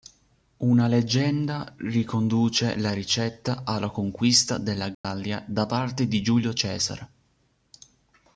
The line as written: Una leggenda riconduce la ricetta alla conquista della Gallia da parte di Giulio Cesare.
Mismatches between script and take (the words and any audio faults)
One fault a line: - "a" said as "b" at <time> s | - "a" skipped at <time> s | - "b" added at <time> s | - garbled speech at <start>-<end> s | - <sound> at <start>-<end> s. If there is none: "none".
- dropout at 4.9-5.0 s